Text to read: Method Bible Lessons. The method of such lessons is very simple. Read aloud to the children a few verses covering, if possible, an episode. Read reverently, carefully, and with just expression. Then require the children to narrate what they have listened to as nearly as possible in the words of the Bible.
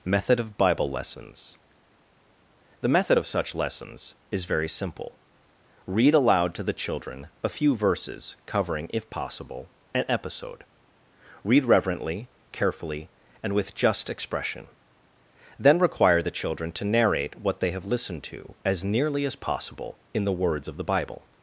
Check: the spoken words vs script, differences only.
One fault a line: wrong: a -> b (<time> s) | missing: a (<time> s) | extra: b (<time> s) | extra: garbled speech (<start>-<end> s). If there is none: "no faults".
extra: of (0.4 s)